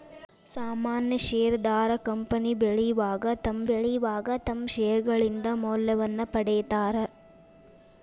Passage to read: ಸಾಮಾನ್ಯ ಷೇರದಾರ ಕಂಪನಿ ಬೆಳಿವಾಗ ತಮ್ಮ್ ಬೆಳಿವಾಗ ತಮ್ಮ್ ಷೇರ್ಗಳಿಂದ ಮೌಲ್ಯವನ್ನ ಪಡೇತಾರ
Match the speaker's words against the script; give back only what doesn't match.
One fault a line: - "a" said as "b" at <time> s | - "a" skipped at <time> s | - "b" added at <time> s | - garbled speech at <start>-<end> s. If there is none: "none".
none